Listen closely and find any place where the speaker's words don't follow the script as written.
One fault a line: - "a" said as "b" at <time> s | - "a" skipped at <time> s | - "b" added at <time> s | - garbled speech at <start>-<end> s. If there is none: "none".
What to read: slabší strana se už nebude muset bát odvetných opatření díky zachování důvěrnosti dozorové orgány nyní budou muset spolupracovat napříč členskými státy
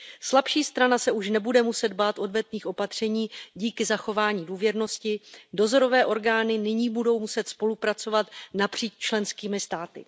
none